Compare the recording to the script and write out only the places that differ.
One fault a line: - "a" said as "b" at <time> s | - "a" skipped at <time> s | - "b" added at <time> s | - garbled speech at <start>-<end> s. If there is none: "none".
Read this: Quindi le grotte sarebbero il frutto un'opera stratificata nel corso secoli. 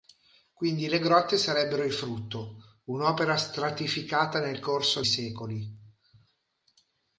none